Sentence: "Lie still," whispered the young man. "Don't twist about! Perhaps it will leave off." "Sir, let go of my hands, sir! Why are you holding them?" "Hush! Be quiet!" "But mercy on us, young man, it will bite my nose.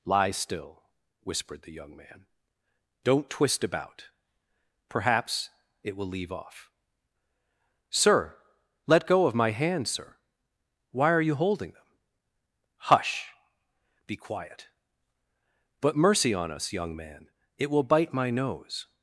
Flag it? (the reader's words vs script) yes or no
no